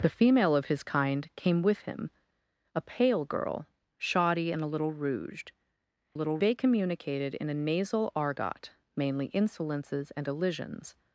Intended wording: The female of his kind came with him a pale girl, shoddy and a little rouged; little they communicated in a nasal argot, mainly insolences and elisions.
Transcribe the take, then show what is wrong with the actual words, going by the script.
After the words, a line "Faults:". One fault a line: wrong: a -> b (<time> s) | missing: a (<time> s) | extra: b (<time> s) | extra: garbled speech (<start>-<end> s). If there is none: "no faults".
The female of his kind came with him a pale girl, shoddy and a little rouged; little they communicated in a nasal argot, mainly insolences and elisions.
Faults:
no faults